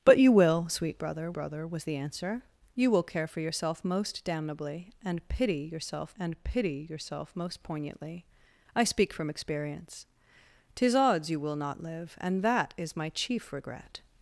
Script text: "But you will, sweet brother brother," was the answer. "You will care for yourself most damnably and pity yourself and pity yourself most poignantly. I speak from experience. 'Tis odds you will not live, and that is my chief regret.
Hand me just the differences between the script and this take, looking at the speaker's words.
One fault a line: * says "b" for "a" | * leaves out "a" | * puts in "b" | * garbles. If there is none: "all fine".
all fine